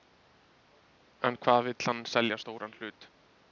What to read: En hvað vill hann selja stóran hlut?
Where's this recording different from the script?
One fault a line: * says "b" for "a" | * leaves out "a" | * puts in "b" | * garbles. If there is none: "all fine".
all fine